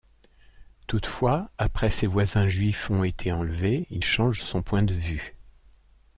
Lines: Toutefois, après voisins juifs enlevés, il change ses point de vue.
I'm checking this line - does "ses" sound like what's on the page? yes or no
no